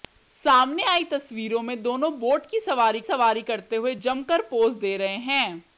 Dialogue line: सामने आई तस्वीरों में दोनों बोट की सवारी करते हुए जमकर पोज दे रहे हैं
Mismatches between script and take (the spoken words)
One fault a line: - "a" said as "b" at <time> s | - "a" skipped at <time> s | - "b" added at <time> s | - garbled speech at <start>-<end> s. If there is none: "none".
- "सवारी" added at 3.0 s